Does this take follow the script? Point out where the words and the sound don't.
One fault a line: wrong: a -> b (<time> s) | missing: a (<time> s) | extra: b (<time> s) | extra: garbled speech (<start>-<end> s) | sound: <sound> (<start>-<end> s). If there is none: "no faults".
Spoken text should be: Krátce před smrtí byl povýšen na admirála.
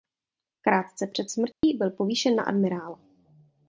sound: dropout (1.5-1.6 s)